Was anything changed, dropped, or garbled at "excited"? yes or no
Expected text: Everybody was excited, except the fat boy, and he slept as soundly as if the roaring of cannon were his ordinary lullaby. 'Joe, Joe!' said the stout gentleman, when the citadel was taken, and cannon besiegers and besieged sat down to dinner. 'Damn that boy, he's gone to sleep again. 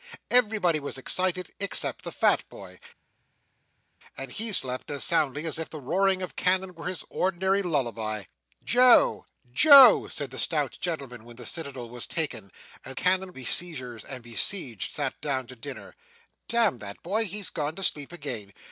no